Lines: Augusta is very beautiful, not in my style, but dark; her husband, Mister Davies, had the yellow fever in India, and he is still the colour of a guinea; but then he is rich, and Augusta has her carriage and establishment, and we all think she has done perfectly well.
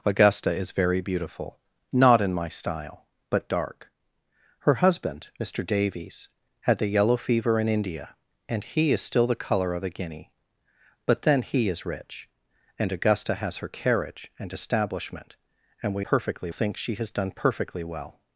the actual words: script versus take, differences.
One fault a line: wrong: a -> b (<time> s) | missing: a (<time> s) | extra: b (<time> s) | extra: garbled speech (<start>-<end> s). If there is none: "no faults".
wrong: all -> perfectly (16.0 s)